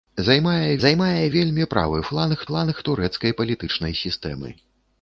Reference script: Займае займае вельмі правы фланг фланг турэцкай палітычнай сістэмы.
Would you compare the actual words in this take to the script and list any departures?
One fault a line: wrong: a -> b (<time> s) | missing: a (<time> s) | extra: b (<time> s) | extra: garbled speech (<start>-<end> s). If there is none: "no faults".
no faults